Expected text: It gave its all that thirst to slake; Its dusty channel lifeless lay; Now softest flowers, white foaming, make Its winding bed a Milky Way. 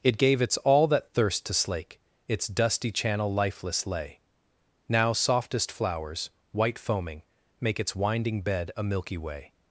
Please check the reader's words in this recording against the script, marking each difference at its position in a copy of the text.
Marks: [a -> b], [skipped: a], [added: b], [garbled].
It gave its all that thirst to slake; Its dusty channel lifeless lay; Now softest flowers, white foaming, make Its winding bed a Milky Way.